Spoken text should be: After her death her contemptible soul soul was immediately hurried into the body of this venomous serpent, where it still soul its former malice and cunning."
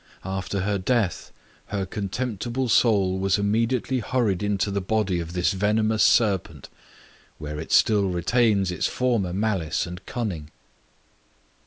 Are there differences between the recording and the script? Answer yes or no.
yes